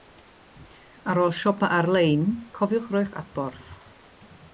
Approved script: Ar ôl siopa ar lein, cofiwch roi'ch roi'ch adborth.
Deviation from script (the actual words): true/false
true